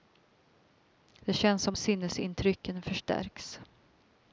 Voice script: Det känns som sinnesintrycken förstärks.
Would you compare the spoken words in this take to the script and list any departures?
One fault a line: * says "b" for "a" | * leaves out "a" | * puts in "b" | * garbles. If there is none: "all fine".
all fine